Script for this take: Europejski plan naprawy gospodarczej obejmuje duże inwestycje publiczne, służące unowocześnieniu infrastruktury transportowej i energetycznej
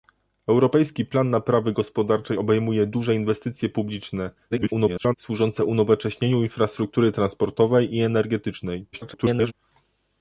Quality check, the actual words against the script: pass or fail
fail